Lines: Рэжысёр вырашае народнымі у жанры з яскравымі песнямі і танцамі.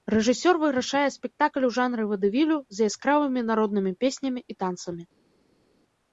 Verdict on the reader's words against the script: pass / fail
fail